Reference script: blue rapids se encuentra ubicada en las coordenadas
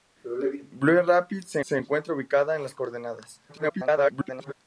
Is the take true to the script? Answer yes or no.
no